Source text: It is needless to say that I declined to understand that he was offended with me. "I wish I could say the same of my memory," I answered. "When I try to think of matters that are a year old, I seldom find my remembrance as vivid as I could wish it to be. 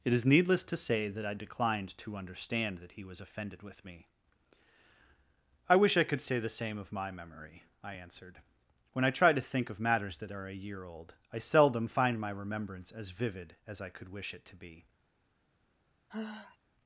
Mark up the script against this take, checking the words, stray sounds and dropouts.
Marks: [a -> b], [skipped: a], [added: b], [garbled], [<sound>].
It is needless to say that I declined to understand that he was offended with me. "I wish I could say the same of my memory," I answered. "When I try to think of matters that are a year old, I seldom find my remembrance as vivid as I could wish it to be. [sigh]